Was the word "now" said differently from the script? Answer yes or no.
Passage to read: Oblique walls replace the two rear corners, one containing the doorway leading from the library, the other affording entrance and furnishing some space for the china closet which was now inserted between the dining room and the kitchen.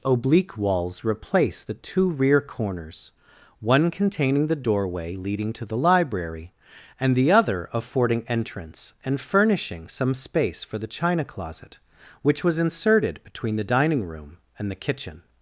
yes